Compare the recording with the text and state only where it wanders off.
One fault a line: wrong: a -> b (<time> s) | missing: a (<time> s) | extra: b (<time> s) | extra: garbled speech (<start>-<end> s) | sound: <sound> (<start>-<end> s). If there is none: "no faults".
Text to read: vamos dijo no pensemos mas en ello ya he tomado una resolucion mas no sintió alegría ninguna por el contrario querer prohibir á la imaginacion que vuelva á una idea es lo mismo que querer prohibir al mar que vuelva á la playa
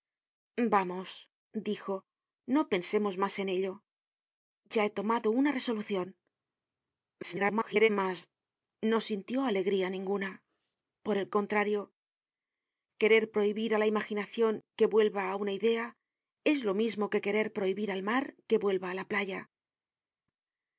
extra: garbled speech (7.2-7.9 s)